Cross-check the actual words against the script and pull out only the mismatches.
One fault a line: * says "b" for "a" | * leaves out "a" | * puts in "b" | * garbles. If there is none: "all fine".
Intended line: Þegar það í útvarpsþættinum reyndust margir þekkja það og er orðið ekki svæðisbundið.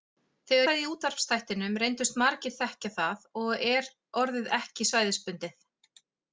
all fine